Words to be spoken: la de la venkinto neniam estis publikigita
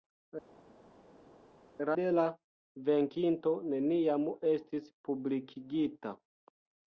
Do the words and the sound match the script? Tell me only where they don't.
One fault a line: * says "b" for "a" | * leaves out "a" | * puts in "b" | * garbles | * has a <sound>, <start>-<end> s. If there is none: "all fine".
all fine